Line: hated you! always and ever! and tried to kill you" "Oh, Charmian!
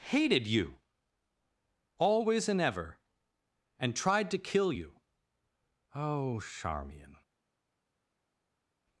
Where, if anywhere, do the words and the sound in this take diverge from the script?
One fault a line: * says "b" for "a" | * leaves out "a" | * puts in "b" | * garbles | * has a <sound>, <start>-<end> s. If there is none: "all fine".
all fine